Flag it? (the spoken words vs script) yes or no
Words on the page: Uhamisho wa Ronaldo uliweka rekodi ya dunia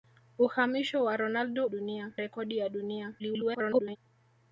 yes